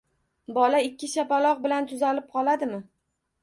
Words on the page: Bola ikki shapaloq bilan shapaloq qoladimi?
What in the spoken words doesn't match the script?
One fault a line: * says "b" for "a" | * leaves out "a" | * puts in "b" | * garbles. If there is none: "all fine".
* says "tuzalib" for "shapaloq"